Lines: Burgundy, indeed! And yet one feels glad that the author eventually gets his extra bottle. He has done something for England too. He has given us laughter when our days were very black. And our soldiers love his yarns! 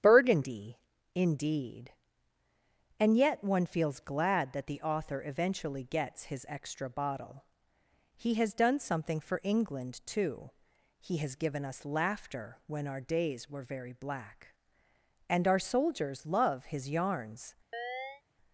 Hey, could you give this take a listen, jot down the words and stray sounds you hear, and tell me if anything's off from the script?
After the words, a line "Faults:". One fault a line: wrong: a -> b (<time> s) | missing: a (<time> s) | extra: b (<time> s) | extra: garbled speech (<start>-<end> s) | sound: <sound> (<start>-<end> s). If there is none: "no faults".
Burgundy, indeed! And yet one feels glad that the author eventually gets his extra bottle. He has done something for England too. He has given us laughter when our days were very black. And our soldiers love his yarns!
Faults:
sound: chirp (17.7-18.2 s)